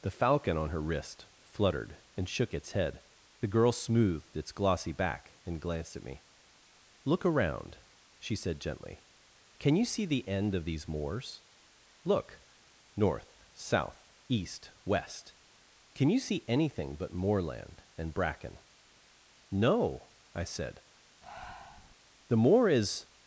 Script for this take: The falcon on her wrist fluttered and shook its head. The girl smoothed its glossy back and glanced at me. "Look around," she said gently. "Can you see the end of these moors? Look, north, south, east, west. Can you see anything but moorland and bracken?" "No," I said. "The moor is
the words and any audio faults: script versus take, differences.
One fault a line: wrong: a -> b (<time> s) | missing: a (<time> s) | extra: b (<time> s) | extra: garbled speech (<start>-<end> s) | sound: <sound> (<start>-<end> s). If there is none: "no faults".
sound: breath (21.2-22.0 s)